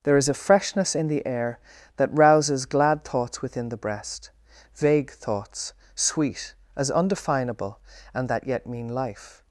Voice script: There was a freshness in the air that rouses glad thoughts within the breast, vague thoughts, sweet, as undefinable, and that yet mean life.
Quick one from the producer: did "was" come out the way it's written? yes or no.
no